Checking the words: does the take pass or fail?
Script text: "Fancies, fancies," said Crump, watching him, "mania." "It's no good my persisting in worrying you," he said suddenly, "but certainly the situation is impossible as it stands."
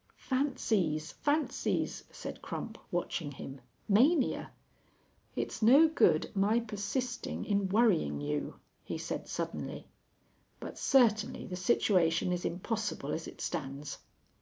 pass